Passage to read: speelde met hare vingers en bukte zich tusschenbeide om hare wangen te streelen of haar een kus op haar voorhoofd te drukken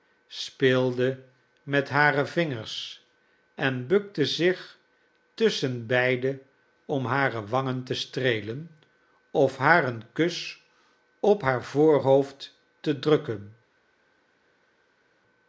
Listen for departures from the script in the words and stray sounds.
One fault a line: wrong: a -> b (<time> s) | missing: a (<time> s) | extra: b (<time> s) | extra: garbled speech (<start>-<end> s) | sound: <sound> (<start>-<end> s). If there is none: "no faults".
no faults